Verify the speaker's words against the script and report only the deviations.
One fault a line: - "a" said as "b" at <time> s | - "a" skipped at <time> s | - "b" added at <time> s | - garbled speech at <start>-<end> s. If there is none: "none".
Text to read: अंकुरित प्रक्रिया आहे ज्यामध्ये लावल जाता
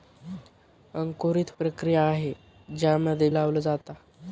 none